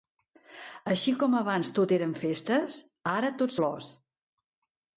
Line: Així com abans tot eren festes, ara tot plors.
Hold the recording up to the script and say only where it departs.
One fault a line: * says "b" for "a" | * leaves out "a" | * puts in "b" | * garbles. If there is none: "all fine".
all fine